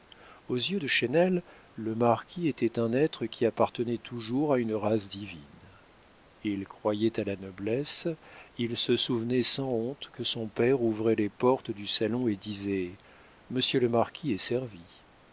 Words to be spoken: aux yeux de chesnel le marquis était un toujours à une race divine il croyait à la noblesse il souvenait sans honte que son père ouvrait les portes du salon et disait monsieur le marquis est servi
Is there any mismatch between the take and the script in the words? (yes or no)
yes